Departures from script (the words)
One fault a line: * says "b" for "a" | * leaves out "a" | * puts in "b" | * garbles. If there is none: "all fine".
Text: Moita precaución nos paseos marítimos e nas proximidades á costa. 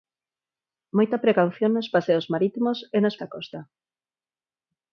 * leaves out "proximidades"